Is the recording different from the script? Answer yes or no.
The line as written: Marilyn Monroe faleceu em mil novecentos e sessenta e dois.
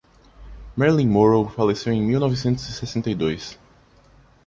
no